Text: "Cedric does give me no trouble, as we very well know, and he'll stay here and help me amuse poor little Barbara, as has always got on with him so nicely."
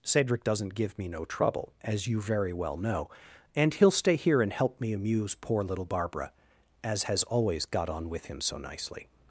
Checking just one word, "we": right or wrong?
wrong